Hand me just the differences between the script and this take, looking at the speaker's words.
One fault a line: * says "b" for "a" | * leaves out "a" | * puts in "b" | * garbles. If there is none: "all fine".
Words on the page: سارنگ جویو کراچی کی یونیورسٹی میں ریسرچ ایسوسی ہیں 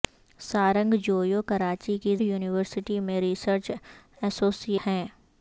all fine